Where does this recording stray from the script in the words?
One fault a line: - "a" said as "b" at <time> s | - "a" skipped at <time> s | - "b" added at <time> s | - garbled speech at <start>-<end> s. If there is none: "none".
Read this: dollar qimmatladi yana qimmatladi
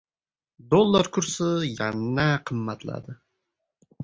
- "qimmatladi" said as "kursi" at 1.2 s